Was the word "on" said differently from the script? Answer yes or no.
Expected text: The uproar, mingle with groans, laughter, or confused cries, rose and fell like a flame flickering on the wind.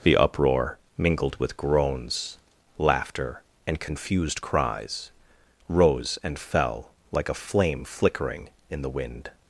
yes